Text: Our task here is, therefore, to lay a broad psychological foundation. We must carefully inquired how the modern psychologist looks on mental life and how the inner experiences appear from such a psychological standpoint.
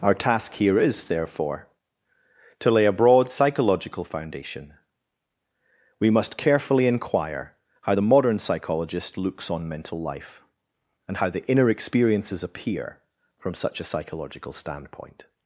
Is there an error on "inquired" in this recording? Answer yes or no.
yes